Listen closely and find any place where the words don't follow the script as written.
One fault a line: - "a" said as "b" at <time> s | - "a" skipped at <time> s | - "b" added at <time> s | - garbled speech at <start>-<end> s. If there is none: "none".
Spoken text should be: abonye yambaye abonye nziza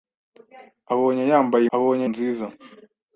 none